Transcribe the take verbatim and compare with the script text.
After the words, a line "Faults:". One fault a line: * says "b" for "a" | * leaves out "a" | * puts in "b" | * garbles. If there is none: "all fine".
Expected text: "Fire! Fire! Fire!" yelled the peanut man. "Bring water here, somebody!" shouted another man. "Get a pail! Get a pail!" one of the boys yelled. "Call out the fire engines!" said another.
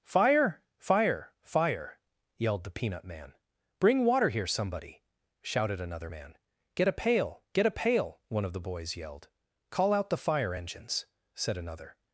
"Fire! Fire! Fire!" yelled the peanut man. "Bring water here, somebody!" shouted another man. "Get a pail! Get a pail!" one of the boys yelled. "Call out the fire engines!" said another.
Faults:
all fine